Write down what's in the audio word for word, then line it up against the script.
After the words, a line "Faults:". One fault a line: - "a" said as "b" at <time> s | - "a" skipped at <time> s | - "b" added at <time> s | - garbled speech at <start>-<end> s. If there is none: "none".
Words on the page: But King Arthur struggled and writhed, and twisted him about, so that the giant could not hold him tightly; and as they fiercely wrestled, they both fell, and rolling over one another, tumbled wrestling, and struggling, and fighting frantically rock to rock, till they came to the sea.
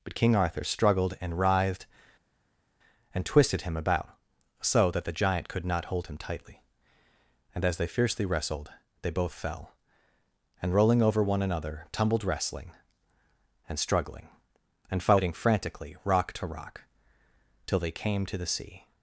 But King Arthur struggled and writhed, and twisted him about, so that the giant could not hold him tightly; and as they fiercely wrestled, they both fell, and rolling over one another, tumbled wrestling, and struggling, and fighting frantically rock to rock, till they came to the sea.
Faults:
none